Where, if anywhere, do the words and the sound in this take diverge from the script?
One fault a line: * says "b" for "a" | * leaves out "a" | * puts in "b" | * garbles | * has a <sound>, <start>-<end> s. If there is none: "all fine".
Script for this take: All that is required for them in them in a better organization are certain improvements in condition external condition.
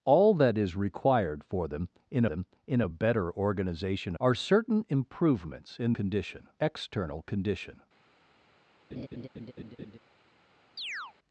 * has a laugh, 8.9-10.0 s
* has a chirp, 10.8-11.1 s